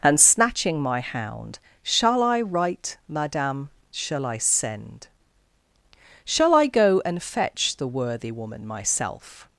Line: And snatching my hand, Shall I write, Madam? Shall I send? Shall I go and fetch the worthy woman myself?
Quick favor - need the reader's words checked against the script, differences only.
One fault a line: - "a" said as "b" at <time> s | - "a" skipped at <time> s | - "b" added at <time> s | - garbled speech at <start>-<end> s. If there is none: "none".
- "hand" said as "hound" at 1.0 s